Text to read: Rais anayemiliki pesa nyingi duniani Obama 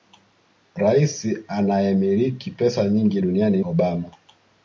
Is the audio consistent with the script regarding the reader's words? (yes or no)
yes